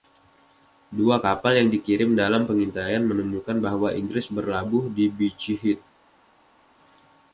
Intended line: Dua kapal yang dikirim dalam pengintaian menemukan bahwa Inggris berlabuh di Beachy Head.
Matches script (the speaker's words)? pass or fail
pass